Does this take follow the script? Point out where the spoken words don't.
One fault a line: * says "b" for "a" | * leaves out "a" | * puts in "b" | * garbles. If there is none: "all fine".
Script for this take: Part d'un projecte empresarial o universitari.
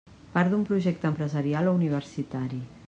all fine